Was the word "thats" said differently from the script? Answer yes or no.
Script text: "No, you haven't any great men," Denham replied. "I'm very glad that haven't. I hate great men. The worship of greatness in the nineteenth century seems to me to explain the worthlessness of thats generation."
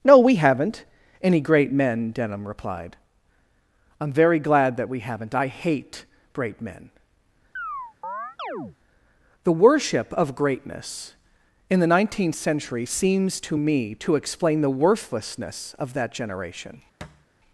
yes